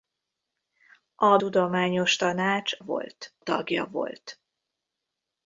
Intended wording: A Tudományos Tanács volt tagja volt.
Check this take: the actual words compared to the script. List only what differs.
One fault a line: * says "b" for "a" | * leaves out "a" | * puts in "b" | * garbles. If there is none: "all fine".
all fine